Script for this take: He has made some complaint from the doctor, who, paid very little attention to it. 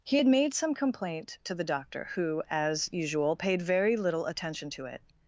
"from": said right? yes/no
no